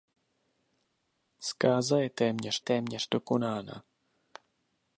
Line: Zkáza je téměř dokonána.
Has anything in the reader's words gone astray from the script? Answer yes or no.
yes